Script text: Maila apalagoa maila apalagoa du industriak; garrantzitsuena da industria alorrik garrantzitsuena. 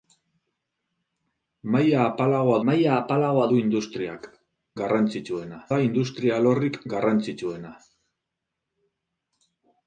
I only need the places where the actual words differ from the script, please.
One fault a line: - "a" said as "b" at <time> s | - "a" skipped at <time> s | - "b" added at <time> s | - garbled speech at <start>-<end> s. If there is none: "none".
none